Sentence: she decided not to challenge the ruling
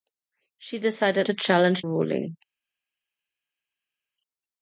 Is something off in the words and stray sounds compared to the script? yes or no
yes